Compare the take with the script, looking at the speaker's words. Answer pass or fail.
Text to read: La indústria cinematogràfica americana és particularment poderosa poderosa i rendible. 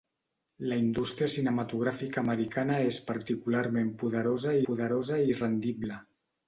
pass